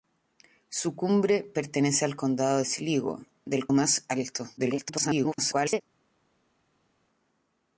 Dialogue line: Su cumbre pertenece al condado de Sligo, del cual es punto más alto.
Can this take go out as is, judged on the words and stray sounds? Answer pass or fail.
fail